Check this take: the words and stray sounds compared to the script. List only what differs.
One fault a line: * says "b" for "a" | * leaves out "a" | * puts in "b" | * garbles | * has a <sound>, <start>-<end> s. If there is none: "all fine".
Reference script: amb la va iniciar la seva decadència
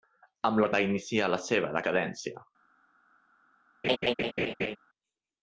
* has a laugh, 3.8-4.8 s